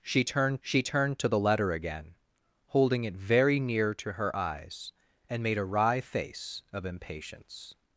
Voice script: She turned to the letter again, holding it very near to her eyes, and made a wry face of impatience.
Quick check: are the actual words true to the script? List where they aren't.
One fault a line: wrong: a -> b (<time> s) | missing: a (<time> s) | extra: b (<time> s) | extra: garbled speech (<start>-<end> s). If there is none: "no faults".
extra: she turned (0.6 s)